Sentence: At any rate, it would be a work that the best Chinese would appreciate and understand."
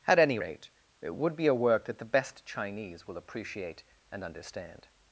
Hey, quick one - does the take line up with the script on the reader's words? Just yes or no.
no